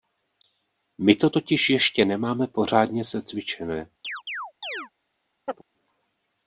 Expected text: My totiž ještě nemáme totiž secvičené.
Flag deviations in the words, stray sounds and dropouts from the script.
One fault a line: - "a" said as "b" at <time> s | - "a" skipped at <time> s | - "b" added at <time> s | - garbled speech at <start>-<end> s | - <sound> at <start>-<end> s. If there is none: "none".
- "to" added at 1.1 s
- "totiž" said as "pořádně" at 2.5 s
- chirp at 4.0-4.9 s
- chirp at 5.5-5.6 s